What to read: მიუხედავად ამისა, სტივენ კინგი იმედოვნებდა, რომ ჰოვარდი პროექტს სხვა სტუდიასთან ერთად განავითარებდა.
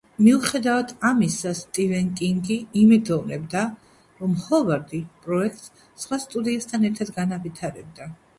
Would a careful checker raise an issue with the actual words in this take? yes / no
no